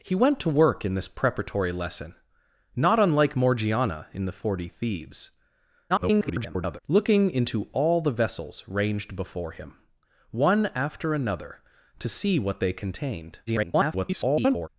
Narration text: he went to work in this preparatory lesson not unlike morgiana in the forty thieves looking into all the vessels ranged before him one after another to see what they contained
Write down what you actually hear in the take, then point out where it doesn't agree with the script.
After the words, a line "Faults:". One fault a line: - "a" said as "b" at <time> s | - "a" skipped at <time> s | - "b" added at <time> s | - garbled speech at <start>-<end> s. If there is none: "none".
he went to work in this preparatory lesson not unlike morgiana in the forty thieves [garbled] looking into all the vessels ranged before him one after another to see what they contained [garbled]
Faults:
- garbled speech at 5.9-6.8 s
- garbled speech at 13.5-14.7 s